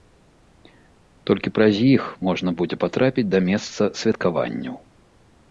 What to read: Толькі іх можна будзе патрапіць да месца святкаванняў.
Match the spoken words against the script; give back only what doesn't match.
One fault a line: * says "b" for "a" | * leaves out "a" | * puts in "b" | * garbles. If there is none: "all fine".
* puts in "праз"